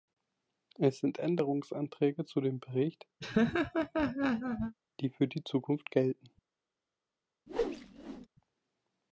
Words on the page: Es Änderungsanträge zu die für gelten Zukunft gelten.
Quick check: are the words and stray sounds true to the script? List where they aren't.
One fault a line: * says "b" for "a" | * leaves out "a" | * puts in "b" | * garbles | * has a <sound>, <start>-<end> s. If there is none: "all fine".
* puts in "sind"
* puts in "dem Bericht"
* has a laugh, 3.2-4.8 s
* says "die" for "gelten"
* has a whoosh, 7.5-8.3 s